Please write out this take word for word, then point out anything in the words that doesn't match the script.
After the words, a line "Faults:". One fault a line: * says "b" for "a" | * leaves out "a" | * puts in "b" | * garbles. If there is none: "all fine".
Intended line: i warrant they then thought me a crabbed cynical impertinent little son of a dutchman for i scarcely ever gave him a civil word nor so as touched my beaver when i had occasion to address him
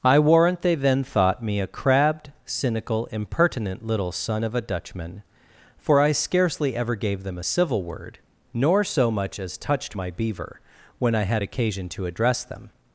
i warrant they then thought me a crabbed cynical impertinent little son of a dutchman for i scarcely ever gave them a civil word nor so much as touched my beaver when i had occasion to address them
Faults:
* says "them" for "him"
* puts in "much"
* says "them" for "him"